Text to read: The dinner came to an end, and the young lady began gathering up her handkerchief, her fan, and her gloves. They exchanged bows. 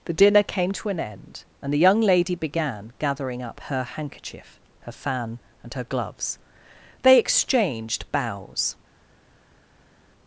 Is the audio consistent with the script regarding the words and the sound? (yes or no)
yes